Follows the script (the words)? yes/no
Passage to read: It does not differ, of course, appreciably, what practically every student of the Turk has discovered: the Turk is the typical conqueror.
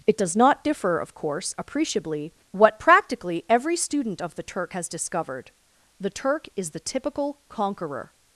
yes